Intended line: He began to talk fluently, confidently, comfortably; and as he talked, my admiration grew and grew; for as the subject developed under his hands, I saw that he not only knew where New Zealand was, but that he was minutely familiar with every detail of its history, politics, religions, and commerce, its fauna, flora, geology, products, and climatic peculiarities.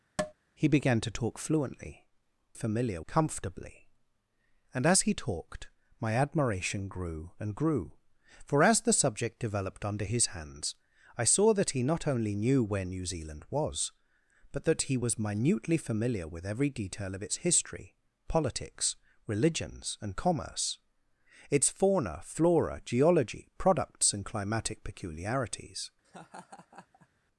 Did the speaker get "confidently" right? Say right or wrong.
wrong